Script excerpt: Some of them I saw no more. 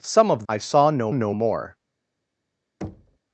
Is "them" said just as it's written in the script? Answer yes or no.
no